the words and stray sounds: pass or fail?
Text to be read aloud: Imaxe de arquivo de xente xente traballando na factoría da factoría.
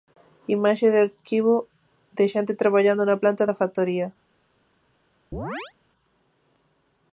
fail